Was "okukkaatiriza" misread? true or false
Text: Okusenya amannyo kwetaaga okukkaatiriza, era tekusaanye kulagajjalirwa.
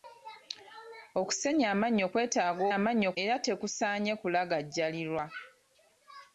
true